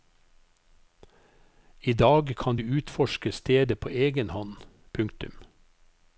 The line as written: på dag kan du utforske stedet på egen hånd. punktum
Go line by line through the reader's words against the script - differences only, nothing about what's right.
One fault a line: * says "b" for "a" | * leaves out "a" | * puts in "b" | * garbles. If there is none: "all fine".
* says "I" for "på"